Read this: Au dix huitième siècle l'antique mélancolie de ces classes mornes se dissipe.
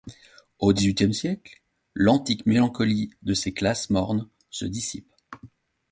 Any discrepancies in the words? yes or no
no